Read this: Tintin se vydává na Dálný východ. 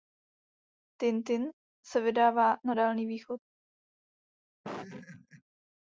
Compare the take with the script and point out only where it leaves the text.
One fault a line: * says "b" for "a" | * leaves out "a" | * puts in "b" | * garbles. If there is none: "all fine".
all fine